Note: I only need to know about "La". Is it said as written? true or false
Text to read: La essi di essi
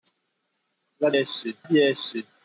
true